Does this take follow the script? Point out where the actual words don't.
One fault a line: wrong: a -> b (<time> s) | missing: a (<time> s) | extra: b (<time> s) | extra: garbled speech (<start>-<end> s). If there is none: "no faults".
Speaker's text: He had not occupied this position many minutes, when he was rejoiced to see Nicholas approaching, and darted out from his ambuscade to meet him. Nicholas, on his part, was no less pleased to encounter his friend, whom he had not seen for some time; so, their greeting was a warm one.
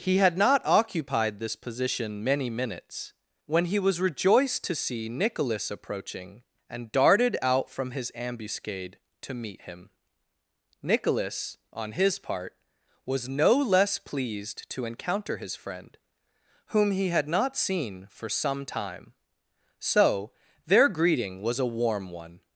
no faults